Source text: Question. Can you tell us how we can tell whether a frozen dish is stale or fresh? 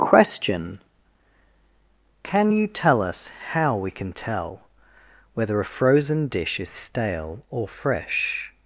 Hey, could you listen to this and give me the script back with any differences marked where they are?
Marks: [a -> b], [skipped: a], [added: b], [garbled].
Question. Can you tell us how we can tell whether a frozen dish is stale or fresh?